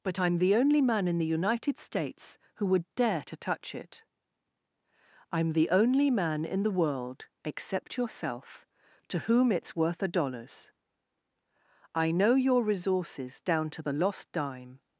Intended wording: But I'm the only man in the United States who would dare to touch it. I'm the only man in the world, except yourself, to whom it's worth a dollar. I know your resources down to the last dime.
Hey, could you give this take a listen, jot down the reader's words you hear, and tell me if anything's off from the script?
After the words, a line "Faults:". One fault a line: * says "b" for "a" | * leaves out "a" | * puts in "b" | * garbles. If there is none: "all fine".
But I'm the only man in the United States who would dare to touch it. I'm the only man in the world, except yourself, to whom it's worth a dollars. I know your resources down to the lost dime.
Faults:
* says "dollars" for "dollar"
* says "lost" for "last"